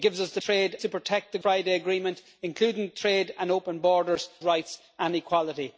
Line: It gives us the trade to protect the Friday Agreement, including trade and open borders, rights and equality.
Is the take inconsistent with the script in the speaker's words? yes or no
no